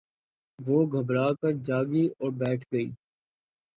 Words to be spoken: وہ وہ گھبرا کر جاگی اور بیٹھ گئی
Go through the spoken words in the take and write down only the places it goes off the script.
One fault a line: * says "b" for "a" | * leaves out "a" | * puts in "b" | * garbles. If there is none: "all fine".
* leaves out "وہ"